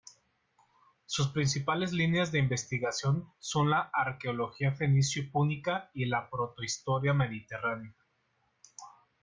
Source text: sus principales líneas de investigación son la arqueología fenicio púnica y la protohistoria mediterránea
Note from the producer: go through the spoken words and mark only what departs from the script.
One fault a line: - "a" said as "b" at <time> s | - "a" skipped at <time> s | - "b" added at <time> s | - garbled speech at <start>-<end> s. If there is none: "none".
none